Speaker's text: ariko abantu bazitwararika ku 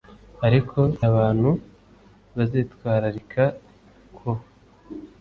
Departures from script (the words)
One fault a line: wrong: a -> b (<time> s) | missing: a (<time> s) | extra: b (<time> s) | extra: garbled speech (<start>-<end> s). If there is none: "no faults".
no faults